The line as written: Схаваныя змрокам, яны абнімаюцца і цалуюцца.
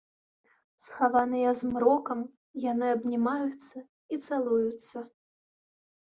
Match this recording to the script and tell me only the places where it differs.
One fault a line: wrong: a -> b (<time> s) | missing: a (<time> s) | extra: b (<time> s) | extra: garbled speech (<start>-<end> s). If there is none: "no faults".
no faults